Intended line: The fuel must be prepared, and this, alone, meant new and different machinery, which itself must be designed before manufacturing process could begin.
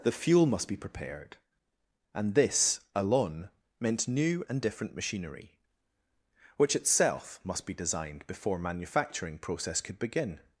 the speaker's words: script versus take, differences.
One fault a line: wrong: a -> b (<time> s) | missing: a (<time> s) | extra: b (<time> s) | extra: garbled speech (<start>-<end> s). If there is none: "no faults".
no faults